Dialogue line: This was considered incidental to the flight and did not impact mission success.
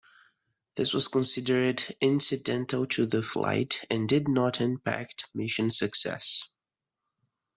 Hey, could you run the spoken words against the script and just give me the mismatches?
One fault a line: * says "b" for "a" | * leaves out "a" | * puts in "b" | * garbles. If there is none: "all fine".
all fine